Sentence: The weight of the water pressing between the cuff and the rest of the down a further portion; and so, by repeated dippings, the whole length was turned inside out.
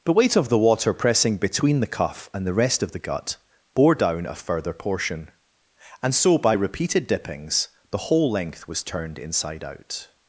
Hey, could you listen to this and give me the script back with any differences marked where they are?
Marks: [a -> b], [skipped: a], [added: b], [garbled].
The weight of the water pressing between the cuff and the rest of the [added: gut bore] down a further portion; and so, by repeated dippings, the whole length was turned inside out.